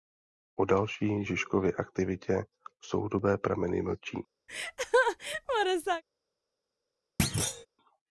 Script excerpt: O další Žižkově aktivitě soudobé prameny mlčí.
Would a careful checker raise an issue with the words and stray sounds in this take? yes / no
yes